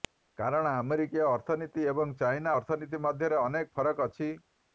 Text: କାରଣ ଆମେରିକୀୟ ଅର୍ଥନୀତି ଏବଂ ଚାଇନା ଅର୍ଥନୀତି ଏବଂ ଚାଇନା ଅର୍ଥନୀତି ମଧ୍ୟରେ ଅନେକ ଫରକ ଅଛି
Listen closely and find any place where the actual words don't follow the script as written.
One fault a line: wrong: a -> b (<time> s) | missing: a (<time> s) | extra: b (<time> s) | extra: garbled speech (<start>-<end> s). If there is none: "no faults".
missing: ଏବଂ ଚାଇନା ଅର୍ଥନୀତି (3.0 s)